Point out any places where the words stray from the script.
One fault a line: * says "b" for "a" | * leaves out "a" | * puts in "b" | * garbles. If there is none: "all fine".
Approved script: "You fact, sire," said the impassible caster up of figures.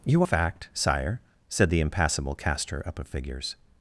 all fine